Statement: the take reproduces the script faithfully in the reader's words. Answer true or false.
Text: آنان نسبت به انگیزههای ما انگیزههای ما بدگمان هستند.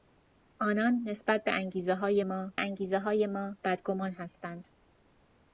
true